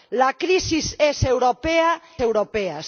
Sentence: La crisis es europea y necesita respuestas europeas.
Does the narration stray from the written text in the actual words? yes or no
yes